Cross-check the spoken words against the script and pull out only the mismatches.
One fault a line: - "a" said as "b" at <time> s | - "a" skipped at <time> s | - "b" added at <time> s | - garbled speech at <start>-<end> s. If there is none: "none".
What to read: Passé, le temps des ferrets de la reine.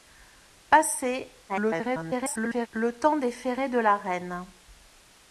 - garbled speech at 1.5-2.7 s